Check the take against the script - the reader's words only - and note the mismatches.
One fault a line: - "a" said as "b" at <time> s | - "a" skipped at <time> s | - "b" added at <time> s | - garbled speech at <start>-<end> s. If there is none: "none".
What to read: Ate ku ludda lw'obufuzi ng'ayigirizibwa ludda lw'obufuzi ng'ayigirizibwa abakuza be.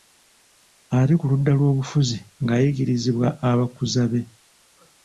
- "ludda lw'obufuzi ng'ayigirizibwa" skipped at 3.3 s